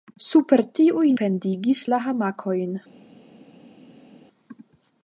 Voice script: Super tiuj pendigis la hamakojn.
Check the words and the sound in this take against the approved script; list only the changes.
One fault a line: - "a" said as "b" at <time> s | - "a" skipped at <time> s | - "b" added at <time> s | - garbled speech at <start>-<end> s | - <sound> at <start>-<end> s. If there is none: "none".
none